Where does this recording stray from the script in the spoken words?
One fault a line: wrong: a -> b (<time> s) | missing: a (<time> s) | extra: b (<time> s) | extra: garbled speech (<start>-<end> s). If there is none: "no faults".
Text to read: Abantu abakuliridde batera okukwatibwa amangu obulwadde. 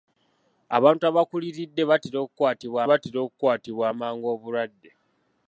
extra: batera okukwatibwa (2.9 s)